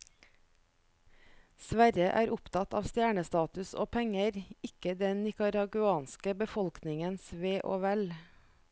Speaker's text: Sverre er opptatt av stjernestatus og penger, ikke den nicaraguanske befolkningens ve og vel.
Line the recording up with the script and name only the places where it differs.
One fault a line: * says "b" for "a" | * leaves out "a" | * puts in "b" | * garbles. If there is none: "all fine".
all fine